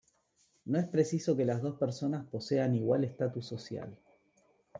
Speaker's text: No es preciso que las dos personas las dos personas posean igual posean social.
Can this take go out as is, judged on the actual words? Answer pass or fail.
fail